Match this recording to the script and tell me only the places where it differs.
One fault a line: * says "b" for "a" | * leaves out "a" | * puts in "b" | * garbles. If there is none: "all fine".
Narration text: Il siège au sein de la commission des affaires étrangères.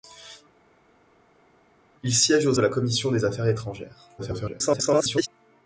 * leaves out "sein"
* garbles